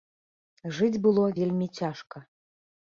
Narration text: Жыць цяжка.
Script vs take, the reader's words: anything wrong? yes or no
yes